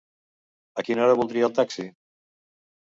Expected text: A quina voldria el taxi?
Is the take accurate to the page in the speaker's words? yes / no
no